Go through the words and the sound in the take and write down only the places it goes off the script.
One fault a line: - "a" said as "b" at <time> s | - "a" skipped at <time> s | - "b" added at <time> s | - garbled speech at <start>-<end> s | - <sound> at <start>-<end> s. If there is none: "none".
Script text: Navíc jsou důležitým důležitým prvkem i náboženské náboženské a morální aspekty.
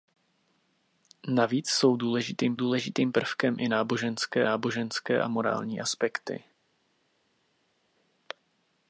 none